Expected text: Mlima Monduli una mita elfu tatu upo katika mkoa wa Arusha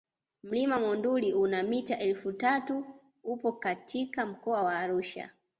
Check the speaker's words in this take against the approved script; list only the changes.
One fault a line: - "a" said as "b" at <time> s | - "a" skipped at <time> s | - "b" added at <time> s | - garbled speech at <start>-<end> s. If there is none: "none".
none